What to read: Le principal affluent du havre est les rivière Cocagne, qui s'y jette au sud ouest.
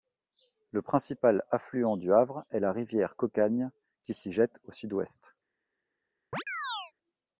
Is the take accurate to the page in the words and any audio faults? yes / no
no